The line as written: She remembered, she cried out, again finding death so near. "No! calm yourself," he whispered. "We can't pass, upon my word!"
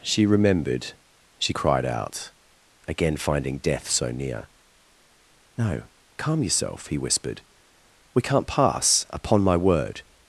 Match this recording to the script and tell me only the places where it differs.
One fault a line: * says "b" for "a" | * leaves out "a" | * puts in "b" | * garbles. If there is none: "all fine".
all fine